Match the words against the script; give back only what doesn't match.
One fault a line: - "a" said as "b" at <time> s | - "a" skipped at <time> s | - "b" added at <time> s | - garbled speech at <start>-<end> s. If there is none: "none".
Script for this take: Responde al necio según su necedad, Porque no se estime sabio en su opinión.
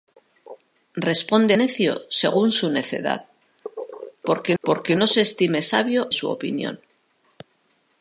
- "al" skipped at 1.6 s
- "Porque" added at 4.6 s
- "en" skipped at 6.1 s